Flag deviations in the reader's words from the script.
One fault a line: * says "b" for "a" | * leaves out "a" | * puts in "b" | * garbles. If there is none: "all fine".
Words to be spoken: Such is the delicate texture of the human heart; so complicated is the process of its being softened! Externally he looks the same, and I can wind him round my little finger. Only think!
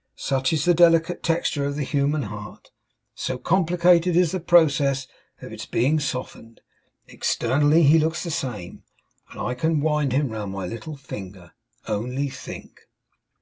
all fine